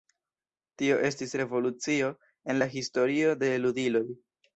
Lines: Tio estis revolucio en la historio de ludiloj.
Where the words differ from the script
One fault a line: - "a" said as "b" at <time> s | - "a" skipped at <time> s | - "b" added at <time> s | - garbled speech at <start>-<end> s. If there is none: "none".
none